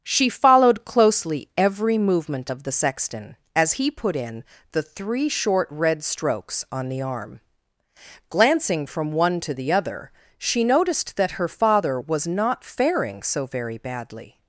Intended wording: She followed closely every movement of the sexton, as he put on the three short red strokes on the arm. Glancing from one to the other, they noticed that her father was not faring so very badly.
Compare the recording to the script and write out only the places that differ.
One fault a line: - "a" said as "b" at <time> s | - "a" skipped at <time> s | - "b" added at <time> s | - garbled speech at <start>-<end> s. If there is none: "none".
- "on" said as "in" at 4.1 s
- "they" said as "she" at 10.4 s